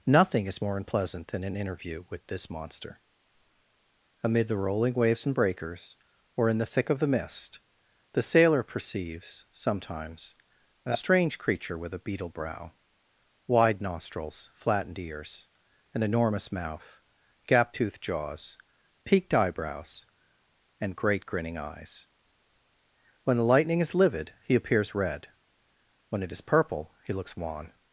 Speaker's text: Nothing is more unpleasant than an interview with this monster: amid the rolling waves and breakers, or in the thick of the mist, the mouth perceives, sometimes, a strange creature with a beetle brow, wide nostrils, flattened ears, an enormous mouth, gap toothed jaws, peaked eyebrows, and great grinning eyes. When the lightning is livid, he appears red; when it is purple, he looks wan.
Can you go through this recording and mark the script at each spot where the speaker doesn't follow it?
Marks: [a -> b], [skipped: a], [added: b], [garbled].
Nothing is more unpleasant than an interview with this monster: amid the rolling waves and breakers, or in the thick of the mist, the [mouth -> sailor] perceives, sometimes, a strange creature with a beetle brow, wide nostrils, flattened ears, an enormous mouth, gap toothed jaws, peaked eyebrows, and great grinning eyes. When the lightning is livid, he appears red; when it is purple, he looks wan.